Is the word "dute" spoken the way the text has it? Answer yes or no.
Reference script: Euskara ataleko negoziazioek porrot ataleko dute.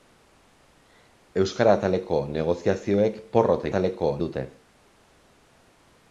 yes